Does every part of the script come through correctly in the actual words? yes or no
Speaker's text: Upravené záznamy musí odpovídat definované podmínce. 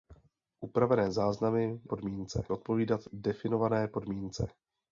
no